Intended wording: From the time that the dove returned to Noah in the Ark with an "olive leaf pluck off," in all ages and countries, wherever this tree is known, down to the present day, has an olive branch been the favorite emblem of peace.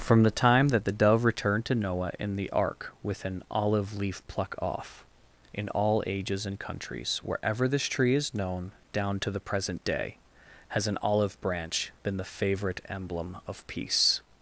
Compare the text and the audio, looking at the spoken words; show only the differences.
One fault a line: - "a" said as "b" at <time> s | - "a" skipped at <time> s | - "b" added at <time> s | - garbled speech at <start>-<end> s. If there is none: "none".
none